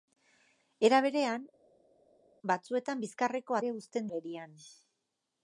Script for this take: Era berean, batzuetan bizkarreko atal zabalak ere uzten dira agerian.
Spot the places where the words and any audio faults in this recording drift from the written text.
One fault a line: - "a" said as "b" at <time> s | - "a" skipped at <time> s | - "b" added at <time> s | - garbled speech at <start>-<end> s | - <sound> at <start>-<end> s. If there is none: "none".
- "atal zabalak" skipped at 3.6 s
- "dira" skipped at 4.1 s